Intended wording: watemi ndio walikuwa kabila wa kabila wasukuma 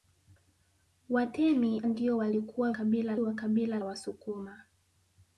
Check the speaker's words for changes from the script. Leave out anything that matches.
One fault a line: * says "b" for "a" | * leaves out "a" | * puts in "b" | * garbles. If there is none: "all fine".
all fine